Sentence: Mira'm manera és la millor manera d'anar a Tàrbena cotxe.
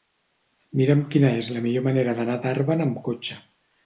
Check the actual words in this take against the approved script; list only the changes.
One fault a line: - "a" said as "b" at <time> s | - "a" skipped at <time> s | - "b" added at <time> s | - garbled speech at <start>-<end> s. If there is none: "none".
- "manera" said as "quina" at 1.1 s
- "amb" added at 2.9 s